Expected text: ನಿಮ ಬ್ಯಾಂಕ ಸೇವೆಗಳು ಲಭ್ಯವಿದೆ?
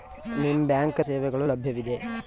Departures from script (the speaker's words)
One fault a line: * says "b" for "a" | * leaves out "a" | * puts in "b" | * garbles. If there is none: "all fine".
all fine